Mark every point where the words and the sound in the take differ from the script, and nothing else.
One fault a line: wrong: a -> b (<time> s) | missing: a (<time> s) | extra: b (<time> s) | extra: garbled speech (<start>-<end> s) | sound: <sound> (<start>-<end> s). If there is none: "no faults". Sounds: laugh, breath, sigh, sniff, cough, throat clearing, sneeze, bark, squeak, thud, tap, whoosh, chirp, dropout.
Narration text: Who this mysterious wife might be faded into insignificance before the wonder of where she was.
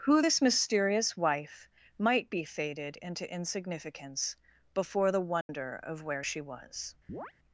sound: dropout (5.4-5.5 s)
sound: chirp (7.1-7.3 s)